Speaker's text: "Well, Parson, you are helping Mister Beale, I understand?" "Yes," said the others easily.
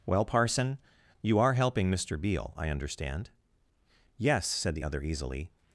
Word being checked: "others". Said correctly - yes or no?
no